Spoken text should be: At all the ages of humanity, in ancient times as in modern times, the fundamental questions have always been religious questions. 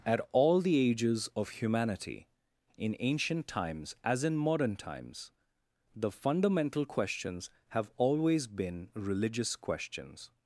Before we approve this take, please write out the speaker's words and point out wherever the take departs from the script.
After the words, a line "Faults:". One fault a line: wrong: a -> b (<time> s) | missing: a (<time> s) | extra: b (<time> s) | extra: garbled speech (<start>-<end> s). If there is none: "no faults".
At all the ages of humanity, in ancient times as in modern times, the fundamental questions have always been religious questions.
Faults:
no faults